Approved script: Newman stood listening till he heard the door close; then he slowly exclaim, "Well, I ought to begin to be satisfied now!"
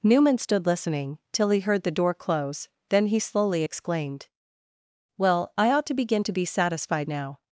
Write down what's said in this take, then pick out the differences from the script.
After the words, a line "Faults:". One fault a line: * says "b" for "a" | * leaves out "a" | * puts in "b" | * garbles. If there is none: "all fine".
Newman stood listening till he heard the door close; then he slowly exclaimed, "Well, I ought to begin to be satisfied now!"
Faults:
* says "exclaimed" for "exclaim"